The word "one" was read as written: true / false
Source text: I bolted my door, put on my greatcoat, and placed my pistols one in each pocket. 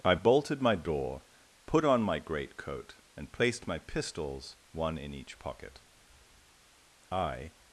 true